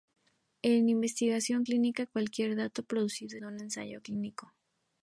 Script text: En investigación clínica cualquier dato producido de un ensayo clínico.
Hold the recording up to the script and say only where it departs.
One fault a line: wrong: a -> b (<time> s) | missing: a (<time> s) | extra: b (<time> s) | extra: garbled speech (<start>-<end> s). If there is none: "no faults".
no faults